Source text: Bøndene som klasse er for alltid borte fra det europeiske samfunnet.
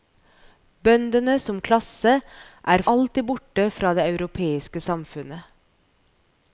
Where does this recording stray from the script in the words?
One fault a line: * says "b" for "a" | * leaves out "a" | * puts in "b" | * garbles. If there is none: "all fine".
* leaves out "for"